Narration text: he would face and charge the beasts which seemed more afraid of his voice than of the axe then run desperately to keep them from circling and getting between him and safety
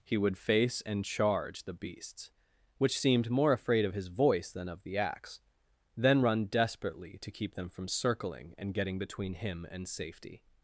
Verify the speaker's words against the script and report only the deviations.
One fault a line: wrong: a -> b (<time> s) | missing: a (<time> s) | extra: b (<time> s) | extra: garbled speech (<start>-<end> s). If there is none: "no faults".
no faults